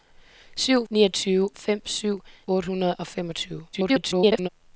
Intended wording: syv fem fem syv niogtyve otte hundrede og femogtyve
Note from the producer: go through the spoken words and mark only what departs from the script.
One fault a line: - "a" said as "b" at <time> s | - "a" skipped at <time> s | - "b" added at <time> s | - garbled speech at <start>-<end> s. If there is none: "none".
- "fem" said as "niogtyve" at 0.9 s
- "niogtyve" skipped at 2.2 s
- garbled speech at 3.7-4.5 s